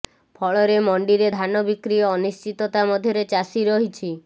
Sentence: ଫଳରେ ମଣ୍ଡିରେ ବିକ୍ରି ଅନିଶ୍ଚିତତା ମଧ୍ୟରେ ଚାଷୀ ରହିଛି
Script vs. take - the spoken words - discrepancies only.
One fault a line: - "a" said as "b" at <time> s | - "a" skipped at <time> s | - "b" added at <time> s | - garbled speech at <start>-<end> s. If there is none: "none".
- "ଧାନ" added at 1.3 s